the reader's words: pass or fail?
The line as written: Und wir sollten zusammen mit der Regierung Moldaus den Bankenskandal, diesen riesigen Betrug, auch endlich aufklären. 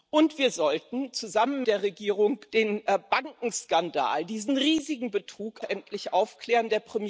fail